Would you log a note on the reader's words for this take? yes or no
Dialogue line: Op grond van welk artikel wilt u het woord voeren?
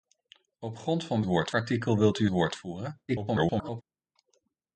yes